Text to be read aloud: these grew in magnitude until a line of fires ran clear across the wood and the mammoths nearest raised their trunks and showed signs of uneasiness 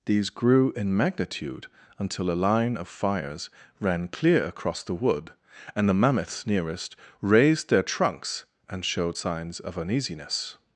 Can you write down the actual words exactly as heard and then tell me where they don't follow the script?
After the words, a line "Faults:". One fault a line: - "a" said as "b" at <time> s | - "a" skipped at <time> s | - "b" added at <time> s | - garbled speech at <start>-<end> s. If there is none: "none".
these grew in magnitude until a line of fires ran clear across the wood and the mammoths nearest raised their trunks and showed signs of uneasiness
Faults:
none